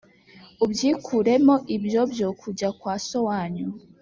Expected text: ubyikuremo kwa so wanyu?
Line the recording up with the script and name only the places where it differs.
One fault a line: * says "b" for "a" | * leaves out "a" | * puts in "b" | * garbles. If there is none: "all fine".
* puts in "ibyo byo kujya"